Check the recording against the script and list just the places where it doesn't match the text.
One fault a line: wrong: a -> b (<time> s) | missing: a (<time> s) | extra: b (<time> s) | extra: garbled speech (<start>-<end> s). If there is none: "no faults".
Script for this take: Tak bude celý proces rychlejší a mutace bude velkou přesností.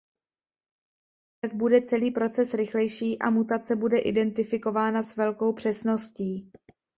extra: identifikována s (4.0 s)